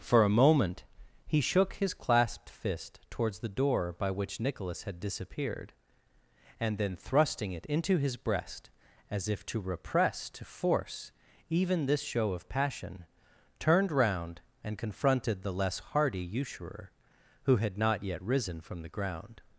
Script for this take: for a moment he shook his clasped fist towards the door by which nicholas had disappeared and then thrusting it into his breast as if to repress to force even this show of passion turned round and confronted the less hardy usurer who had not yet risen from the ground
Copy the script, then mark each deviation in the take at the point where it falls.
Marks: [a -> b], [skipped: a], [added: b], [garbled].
for a moment he shook his clasped fist towards the door by which nicholas had disappeared and then thrusting it into his breast as if to repress to force even this show of passion turned round and confronted the less hardy usurer who had not yet risen from the ground